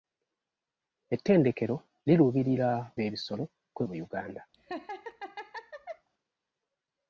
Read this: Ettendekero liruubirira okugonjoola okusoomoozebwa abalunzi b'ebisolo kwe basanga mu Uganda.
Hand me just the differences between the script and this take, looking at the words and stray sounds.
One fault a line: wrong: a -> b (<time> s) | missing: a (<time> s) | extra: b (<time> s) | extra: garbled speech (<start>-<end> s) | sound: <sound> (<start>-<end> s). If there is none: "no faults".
missing: okugonjoola okusoomoozebwa abalunzi (2.7 s)
missing: basanga (3.8 s)
sound: laugh (4.5-6.1 s)